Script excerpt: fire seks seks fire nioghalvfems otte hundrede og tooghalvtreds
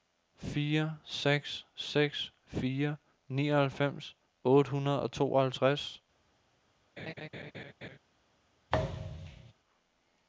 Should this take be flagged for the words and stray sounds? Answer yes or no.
yes